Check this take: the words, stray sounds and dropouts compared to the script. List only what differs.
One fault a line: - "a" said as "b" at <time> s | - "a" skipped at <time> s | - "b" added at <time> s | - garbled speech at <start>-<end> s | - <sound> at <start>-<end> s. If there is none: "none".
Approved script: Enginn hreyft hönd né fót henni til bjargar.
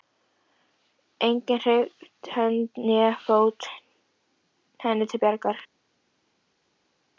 none